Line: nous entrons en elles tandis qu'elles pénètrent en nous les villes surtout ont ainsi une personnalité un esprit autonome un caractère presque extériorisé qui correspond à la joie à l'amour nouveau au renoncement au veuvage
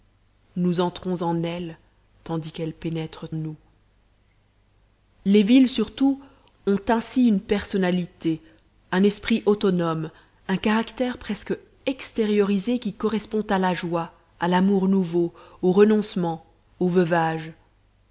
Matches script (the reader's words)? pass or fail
fail